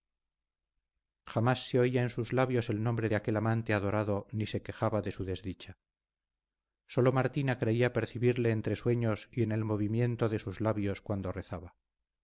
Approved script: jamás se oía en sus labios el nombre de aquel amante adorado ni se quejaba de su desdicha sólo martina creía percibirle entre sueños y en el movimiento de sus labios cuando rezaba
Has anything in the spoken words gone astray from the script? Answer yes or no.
no